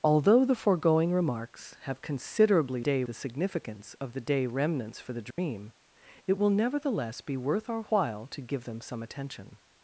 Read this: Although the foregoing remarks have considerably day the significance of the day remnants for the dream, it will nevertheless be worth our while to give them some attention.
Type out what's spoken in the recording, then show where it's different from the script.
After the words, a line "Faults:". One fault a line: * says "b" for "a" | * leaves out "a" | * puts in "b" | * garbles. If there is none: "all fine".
Although the foregoing remarks have considerably day the significance of the day remnants for the dream, it will nevertheless be worth our while to give them some attention.
Faults:
all fine